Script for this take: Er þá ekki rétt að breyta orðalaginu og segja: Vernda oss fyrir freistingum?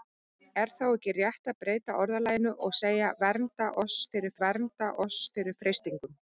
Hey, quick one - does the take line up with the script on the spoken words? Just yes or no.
no